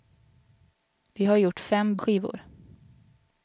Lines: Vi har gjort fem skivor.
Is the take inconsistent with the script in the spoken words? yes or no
no